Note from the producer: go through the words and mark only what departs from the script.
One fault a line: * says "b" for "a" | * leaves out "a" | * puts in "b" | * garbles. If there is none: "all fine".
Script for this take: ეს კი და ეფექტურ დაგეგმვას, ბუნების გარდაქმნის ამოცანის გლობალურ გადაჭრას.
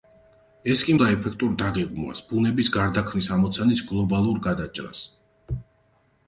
all fine